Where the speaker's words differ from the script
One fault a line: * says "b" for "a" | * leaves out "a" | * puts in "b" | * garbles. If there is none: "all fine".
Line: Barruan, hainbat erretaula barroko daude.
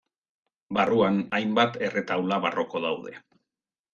all fine